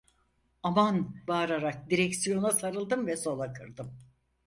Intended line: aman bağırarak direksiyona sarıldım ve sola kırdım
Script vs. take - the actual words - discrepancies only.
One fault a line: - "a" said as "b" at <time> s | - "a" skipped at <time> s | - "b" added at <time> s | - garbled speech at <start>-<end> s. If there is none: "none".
none